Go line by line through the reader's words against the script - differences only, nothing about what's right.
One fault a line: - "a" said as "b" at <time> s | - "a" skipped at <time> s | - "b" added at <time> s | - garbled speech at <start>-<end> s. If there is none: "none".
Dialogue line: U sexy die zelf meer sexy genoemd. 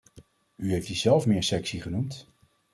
- "sexy" said as "heeft" at 0.7 s